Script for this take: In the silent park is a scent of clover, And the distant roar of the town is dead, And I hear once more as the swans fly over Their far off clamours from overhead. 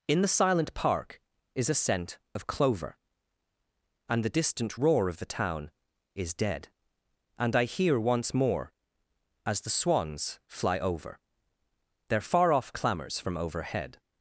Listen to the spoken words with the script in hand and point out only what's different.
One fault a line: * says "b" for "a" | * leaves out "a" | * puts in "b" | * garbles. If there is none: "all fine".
all fine